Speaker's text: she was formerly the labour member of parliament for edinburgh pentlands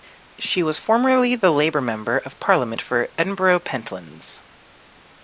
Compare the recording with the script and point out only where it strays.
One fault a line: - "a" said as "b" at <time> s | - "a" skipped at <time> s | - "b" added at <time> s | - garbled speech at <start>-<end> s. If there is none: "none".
none